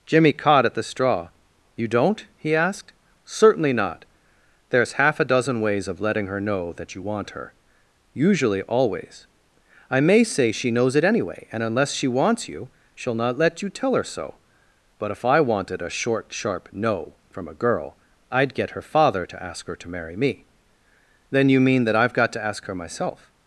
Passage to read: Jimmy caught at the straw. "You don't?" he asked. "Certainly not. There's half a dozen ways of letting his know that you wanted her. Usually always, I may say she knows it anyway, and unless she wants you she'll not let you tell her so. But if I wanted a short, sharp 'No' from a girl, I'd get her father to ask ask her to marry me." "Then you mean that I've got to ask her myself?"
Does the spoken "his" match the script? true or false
false